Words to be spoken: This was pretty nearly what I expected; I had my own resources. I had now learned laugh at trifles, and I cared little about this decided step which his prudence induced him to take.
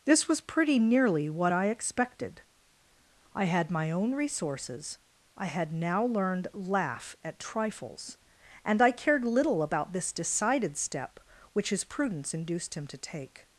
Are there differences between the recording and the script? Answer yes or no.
no